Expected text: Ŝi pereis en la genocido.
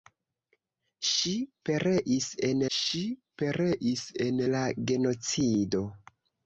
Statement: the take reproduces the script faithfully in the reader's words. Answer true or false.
false